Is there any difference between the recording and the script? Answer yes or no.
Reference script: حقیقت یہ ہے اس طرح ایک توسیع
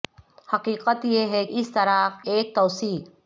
no